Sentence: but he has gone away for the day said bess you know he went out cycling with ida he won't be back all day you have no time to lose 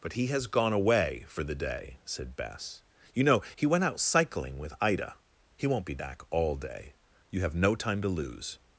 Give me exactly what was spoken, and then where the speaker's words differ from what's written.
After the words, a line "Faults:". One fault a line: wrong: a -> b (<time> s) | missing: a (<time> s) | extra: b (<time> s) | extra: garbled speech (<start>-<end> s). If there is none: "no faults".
but he has gone away for the day said bess you know he went out cycling with ida he won't be back all day you have no time to lose
Faults:
no faults